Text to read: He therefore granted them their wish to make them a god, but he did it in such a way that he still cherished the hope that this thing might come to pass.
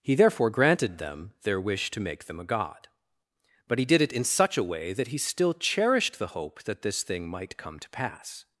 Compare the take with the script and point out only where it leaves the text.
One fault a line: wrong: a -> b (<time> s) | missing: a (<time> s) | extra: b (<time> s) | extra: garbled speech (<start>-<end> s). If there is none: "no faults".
no faults